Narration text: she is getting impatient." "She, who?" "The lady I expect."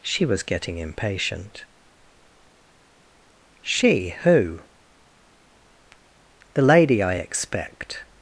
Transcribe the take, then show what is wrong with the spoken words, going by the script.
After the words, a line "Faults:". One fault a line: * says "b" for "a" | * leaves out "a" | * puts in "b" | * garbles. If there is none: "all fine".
she was getting impatient." "She, who?" "The lady I expect."
Faults:
* says "was" for "is"